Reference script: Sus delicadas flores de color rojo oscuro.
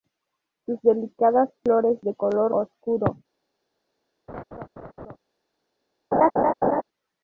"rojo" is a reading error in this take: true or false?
true